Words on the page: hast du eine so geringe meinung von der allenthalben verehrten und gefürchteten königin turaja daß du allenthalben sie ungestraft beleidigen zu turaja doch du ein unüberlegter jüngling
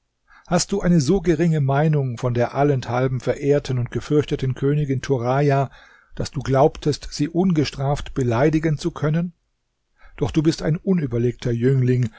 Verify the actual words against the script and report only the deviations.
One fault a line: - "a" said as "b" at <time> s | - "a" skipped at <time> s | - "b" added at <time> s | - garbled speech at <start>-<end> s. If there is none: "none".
- "allenthalben" said as "glaubtest" at 6.4 s
- "turaja" said as "können" at 8.9 s
- "bist" added at 10.4 s